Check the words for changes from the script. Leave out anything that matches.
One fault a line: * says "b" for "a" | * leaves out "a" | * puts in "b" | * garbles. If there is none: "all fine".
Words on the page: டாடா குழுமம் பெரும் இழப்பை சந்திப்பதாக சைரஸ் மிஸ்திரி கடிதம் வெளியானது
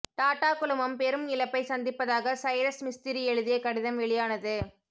* puts in "எழுதிய"